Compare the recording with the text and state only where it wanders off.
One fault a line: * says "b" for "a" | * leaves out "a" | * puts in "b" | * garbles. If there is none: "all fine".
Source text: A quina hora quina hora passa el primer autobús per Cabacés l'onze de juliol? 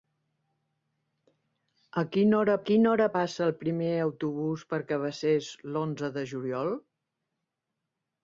all fine